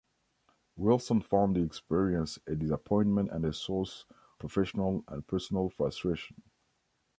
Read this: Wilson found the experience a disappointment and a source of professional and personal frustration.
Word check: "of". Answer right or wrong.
wrong